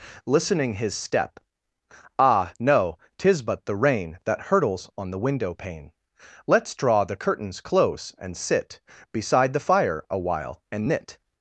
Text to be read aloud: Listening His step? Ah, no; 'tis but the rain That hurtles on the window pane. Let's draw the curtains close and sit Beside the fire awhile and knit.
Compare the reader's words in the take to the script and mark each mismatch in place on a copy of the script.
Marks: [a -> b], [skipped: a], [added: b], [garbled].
Listening His step? Ah, no; 'tis but the rain That hurtles on the window pane. Let's draw the curtains close and sit Beside the fire awhile and knit.